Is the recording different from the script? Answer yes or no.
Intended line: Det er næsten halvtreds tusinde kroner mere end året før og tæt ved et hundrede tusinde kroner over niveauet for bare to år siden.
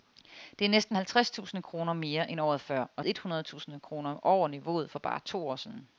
yes